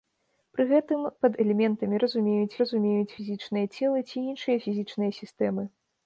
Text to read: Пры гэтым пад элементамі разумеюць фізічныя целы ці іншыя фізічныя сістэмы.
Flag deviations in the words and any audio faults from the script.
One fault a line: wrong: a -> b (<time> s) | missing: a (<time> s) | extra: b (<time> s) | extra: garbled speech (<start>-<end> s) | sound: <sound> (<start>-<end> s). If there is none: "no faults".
extra: разумеюць (2.6 s)